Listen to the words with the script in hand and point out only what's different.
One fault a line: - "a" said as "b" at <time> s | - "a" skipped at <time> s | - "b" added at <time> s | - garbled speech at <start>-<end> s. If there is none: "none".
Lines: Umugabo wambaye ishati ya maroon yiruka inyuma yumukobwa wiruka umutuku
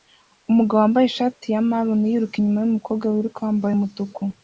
- "wambaye" added at 3.5 s